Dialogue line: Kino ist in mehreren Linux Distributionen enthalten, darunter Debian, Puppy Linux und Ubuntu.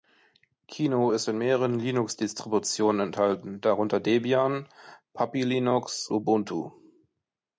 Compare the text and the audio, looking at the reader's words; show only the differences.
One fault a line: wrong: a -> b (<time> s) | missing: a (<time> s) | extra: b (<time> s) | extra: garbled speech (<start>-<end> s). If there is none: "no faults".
missing: und (6.1 s)